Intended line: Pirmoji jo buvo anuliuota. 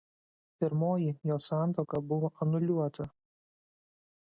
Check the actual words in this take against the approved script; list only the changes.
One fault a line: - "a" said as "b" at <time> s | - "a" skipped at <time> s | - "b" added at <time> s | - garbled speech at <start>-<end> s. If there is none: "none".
- "santuoka" added at 1.5 s